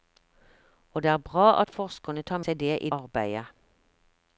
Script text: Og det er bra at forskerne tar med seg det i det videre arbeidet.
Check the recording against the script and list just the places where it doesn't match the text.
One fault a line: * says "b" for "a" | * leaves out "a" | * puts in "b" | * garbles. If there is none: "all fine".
* leaves out "med"
* leaves out "det videre"